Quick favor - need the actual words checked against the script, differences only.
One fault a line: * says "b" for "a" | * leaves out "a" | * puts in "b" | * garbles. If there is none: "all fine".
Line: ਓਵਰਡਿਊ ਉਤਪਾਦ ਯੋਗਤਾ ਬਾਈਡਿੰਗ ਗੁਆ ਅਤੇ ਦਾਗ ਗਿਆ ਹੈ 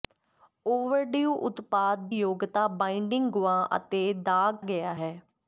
all fine